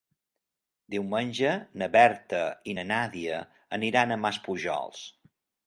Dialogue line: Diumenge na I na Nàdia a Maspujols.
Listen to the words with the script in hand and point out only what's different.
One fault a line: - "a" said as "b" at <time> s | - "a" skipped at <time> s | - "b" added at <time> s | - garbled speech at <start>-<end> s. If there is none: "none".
- "Berta" added at 2.0 s
- "aniran" added at 3.8 s